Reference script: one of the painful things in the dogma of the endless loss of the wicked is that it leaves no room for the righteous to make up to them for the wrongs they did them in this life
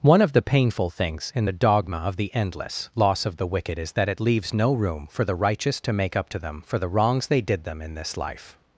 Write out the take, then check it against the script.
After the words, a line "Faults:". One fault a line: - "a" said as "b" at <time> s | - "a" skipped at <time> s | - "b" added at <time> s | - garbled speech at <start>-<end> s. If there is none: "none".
one of the painful things in the dogma of the endless loss of the wicked is that it leaves no room for the righteous to make up to them for the wrongs they did them in this life
Faults:
none